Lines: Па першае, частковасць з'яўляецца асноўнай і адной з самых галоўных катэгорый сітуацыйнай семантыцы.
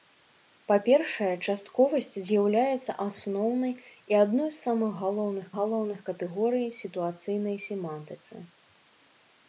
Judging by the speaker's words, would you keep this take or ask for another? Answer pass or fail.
fail